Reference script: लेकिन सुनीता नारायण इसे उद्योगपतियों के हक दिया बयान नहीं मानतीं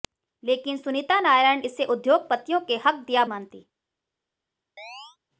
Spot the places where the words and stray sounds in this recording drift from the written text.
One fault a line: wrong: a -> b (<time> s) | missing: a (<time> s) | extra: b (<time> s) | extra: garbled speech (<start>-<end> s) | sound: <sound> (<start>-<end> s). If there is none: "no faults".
missing: बयान नहीं (3.2 s)
sound: chirp (4.8-5.2 s)